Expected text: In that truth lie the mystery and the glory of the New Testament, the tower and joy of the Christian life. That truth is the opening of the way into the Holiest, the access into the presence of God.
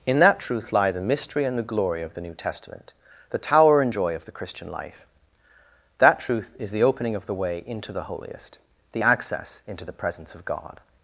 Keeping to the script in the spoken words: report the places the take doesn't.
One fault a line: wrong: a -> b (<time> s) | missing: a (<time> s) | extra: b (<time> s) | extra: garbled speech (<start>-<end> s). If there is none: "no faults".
no faults